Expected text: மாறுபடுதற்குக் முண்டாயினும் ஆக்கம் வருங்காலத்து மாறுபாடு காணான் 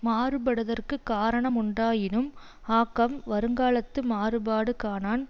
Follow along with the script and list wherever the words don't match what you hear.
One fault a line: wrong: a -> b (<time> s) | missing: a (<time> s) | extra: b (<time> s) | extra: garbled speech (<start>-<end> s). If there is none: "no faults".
extra: காரண (1.1 s)